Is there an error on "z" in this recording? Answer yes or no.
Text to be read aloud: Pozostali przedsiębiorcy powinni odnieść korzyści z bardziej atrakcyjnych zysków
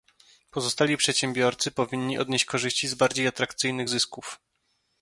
no